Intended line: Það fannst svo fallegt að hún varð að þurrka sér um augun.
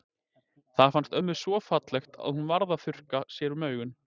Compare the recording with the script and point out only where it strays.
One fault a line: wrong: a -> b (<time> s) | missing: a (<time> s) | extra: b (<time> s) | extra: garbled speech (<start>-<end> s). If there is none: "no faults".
extra: ömmu (1.2 s)